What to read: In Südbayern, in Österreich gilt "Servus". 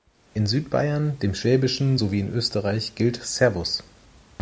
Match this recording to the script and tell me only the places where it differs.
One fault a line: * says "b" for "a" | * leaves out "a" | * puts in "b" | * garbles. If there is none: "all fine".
* puts in "dem Schwäbischen sowie"